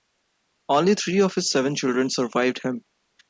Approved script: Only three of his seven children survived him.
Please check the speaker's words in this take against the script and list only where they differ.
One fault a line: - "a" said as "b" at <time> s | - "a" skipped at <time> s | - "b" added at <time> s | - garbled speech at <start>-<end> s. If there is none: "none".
none